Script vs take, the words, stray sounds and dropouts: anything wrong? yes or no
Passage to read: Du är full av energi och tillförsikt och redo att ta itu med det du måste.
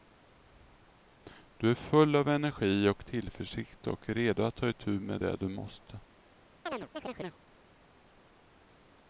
yes